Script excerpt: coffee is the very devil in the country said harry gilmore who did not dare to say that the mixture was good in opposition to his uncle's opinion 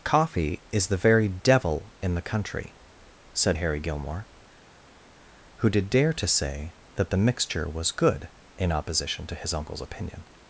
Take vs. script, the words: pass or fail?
fail